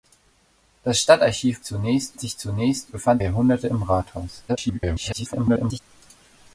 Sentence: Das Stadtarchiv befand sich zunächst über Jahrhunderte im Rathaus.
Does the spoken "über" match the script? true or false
false